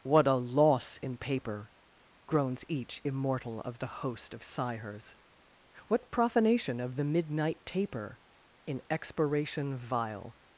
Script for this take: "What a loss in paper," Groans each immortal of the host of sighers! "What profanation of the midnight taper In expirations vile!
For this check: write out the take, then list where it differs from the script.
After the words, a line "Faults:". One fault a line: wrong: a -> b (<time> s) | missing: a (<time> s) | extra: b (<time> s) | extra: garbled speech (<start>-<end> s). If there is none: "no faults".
"What a loss in paper," Groans each immortal of the host of sighers! "What profanation of the midnight taper In expiration vile!
Faults:
wrong: expirations -> expiration (8.9 s)